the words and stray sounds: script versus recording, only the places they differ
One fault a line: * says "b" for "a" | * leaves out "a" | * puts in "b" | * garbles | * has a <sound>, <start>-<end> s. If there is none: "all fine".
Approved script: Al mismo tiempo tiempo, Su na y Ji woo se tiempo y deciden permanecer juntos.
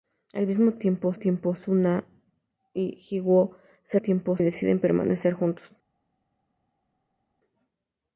all fine